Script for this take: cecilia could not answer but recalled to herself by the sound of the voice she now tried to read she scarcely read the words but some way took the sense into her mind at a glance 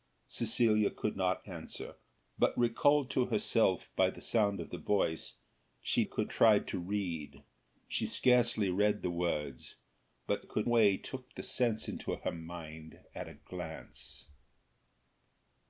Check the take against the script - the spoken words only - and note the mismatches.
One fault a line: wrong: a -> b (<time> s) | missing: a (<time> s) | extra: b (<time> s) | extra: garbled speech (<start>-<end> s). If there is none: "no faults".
wrong: now -> could (6.0 s)
wrong: some -> could (10.4 s)